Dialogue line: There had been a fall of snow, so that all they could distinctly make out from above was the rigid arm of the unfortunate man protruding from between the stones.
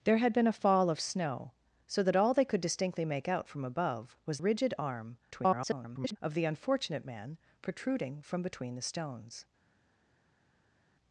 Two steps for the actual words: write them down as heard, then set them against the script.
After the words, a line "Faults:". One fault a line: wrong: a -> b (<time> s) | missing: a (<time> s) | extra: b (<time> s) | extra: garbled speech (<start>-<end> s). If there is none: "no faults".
There had been a fall of snow, so that all they could distinctly make out from above was rigid arm [garbled] of the unfortunate man protruding from between the stones.
Faults:
missing: the (4.4 s)
extra: garbled speech (5.3-6.2 s)